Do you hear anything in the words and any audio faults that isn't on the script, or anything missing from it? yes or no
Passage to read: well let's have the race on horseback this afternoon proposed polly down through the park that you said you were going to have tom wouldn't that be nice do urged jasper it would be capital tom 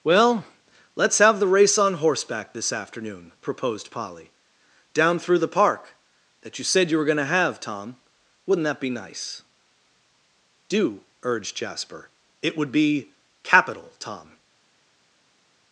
no